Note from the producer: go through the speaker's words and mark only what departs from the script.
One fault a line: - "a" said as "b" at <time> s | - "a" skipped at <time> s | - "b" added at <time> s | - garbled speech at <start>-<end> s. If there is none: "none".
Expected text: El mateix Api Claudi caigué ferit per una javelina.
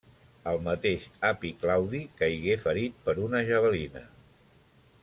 none